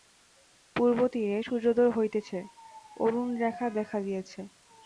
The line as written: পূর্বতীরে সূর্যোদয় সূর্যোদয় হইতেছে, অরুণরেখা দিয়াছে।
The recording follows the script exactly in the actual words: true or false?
false